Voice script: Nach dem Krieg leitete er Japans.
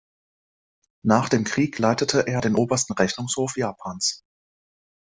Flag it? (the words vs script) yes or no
yes